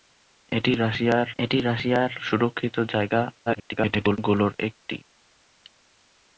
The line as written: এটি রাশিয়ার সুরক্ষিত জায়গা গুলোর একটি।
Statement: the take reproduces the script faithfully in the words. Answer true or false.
false